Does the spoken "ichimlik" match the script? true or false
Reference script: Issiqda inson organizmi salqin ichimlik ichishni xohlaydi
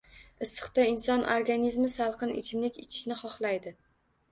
true